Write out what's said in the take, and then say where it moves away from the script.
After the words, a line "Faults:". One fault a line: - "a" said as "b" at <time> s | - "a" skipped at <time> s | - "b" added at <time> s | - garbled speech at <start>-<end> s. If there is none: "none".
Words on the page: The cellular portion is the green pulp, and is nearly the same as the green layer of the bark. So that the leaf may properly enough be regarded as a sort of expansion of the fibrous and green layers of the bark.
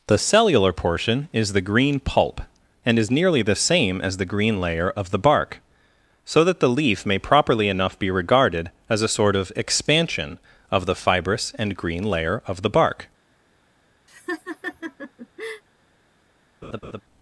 The cellular portion is the green pulp, and is nearly the same as the green layer of the bark. So that the leaf may properly enough be regarded as a sort of expansion of the fibrous and green layer of the bark.
Faults:
- "layers" said as "layer" at 12.0 s